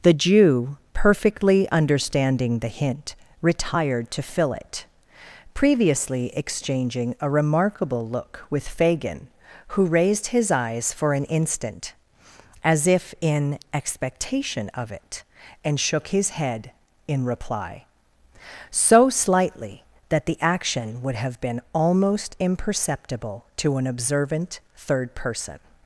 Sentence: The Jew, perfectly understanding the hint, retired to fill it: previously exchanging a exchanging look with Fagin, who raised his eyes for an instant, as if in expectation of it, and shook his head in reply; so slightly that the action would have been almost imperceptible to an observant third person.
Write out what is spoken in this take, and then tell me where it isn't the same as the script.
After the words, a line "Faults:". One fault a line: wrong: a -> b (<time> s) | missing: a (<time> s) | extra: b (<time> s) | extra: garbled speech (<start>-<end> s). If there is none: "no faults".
The Jew, perfectly understanding the hint, retired to fill it: previously exchanging a remarkable look with Fagin, who raised his eyes for an instant, as if in expectation of it, and shook his head in reply; so slightly that the action would have been almost imperceptible to an observant third person.
Faults:
wrong: exchanging -> remarkable (7.3 s)